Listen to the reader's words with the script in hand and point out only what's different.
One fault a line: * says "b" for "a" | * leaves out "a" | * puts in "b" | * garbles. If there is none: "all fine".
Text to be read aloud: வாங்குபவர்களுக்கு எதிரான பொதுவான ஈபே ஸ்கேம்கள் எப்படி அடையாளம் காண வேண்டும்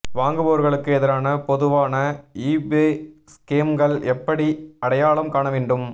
all fine